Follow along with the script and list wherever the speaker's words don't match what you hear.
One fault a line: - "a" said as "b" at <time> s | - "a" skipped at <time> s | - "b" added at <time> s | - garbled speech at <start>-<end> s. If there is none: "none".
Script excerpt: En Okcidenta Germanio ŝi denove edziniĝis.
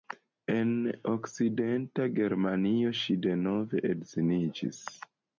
none